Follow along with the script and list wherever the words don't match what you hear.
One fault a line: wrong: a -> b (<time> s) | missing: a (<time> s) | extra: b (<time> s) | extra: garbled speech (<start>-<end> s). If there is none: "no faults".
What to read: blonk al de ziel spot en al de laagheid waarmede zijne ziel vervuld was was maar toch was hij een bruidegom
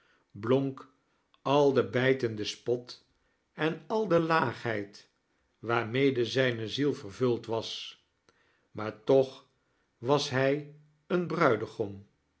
wrong: ziel -> bijtende (1.9 s)
missing: was (8.0 s)